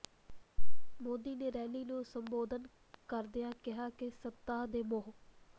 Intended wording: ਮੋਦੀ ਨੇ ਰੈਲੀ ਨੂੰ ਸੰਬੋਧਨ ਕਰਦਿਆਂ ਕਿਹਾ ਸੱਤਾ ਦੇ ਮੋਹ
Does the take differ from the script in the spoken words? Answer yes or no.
yes